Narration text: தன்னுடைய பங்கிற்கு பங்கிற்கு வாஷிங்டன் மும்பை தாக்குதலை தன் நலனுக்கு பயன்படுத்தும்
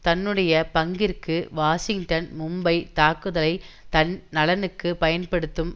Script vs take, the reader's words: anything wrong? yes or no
yes